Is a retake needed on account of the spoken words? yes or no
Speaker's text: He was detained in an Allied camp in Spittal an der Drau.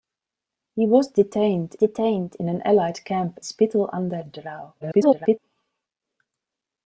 yes